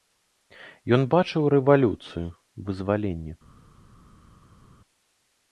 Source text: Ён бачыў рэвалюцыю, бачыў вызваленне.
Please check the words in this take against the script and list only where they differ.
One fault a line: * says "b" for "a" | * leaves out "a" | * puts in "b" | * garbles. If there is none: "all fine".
* leaves out "бачыў"